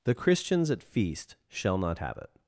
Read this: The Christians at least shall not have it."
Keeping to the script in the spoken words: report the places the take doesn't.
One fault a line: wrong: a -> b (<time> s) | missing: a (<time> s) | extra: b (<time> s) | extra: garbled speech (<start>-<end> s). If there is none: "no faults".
wrong: least -> feast (0.8 s)